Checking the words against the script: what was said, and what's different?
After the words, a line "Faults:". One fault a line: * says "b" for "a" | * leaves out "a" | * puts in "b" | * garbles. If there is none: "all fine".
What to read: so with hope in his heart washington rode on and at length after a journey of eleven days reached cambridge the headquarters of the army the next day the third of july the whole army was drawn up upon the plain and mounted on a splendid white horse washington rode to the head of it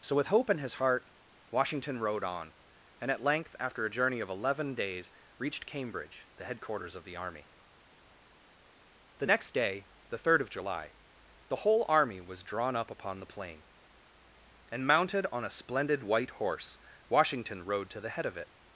so with hope in his heart washington rode on and at length after a journey of eleven days reached cambridge the headquarters of the army the next day the third of july the whole army was drawn up upon the plain and mounted on a splendid white horse washington rode to the head of it
Faults:
all fine